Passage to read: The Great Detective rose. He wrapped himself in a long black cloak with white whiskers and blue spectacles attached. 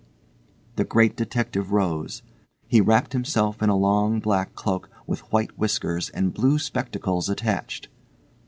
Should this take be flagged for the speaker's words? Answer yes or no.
no